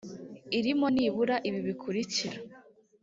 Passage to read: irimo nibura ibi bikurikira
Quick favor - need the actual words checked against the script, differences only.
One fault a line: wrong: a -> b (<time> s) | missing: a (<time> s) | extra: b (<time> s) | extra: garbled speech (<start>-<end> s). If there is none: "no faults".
no faults